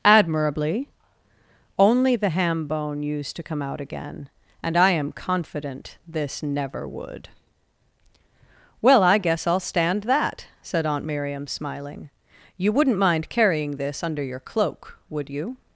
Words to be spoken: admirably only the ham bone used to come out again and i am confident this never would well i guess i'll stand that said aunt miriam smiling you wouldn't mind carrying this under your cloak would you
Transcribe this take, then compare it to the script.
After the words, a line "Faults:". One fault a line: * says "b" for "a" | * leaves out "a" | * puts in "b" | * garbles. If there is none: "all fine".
admirably only the ham bone used to come out again and i am confident this never would well i guess i'll stand that said aunt miriam smiling you wouldn't mind carrying this under your cloak would you
Faults:
all fine